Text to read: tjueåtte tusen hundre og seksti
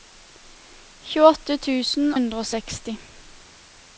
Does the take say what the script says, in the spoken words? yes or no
yes